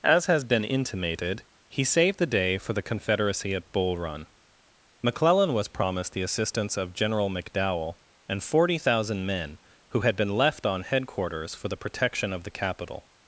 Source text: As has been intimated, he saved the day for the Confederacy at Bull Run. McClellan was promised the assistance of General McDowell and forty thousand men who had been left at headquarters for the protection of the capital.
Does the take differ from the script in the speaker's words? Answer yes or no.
yes